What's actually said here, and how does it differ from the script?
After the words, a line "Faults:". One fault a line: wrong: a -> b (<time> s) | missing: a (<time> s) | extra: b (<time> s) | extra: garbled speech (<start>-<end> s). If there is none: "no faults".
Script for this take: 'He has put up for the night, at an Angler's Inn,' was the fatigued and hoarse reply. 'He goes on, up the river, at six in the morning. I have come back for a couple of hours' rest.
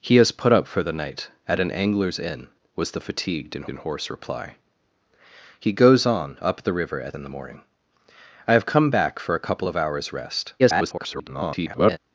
'He has put up for the night, at an Angler's Inn,' was the fatigued and and hoarse reply. 'He goes on, up the river, at in the morning. I have come back for a couple of hours' rest. [garbled]
Faults:
extra: and (3.7 s)
missing: six (7.2 s)
extra: garbled speech (10.6-12.0 s)